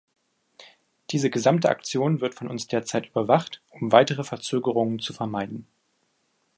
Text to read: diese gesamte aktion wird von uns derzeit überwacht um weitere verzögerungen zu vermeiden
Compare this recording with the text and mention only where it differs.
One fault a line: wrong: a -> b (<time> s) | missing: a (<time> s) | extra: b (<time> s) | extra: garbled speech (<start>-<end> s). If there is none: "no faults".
no faults